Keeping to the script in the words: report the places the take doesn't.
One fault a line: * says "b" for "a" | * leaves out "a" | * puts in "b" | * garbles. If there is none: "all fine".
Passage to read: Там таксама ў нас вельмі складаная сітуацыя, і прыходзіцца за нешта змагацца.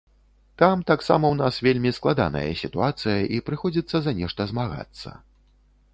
all fine